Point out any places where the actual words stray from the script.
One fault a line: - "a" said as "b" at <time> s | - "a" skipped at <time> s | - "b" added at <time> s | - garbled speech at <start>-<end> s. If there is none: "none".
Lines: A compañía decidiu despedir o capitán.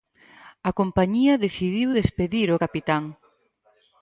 none